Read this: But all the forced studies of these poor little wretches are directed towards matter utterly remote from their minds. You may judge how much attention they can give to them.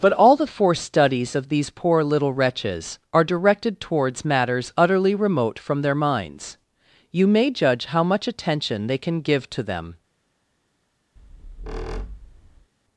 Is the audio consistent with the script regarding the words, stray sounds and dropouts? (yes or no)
no